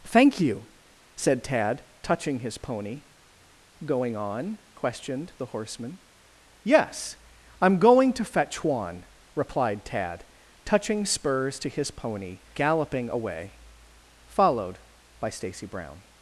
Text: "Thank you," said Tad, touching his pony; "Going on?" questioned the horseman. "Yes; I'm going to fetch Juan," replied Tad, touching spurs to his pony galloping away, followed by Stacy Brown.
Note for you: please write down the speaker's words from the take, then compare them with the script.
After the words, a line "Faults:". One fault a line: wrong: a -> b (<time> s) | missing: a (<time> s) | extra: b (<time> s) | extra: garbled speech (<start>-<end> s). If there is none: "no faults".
"Thank you," said Tad, touching his pony; "Going on?" questioned the horseman. "Yes; I'm going to fetch Juan," replied Tad, touching spurs to his pony galloping away, followed by Stacy Brown.
Faults:
no faults